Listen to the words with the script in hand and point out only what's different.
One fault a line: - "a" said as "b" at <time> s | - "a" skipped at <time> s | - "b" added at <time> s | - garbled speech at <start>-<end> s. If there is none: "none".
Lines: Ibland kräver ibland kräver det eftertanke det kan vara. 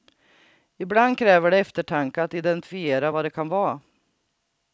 - "ibland kräver det eftertanke" said as "det eftertanke att identifiera vad" at 1.5 s